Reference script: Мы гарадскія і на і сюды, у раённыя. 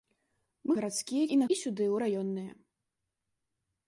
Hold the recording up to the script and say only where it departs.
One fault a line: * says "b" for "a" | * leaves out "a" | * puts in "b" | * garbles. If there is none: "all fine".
all fine